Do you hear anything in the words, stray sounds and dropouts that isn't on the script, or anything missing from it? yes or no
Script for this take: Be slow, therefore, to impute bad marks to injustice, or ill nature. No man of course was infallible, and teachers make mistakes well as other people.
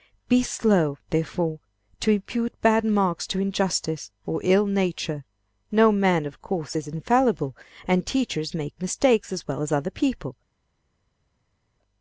yes